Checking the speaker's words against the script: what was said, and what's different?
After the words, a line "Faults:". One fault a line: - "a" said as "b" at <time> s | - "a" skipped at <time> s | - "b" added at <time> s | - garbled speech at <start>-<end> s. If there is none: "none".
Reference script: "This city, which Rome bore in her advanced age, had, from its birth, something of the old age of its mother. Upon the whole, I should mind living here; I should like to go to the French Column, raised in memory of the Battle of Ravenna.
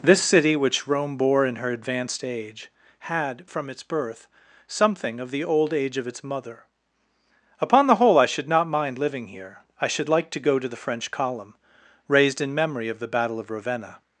"This city, which Rome bore in her advanced age, had, from its birth, something of the old age of its mother. Upon the whole, I should not mind living here; I should like to go to the French Column, raised in memory of the Battle of Ravenna.
Faults:
- "not" added at 8.5 s